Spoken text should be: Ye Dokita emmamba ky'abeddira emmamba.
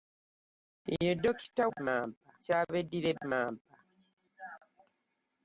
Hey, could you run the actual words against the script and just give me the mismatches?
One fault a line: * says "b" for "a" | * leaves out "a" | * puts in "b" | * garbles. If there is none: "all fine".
all fine